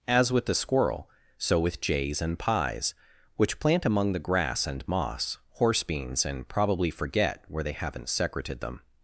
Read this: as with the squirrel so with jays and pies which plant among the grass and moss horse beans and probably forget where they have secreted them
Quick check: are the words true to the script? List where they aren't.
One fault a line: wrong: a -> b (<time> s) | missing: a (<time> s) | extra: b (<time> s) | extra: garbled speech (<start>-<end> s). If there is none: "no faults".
wrong: have -> haven't (7.7 s)